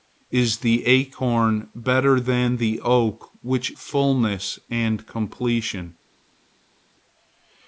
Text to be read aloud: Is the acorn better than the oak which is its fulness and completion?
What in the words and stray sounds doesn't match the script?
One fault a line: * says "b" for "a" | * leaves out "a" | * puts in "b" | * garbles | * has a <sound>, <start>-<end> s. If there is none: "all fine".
* leaves out "is its"